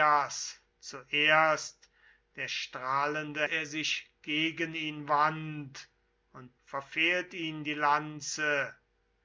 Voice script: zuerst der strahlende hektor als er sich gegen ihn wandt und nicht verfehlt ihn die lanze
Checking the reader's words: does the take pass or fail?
fail